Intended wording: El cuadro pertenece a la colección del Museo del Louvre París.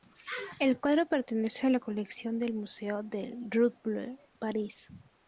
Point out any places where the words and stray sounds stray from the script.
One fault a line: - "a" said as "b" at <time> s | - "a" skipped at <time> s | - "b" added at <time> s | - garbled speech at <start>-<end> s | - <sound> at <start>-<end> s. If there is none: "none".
none